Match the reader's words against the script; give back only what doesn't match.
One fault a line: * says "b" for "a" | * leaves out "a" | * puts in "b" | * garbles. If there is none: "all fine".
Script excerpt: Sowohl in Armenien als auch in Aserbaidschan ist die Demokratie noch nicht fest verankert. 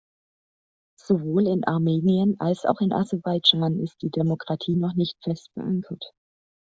all fine